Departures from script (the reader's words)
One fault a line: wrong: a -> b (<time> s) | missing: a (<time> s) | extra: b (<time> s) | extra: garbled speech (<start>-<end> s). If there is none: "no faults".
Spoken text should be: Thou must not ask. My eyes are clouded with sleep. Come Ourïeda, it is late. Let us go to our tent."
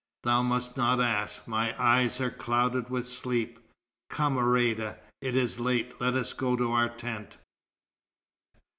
no faults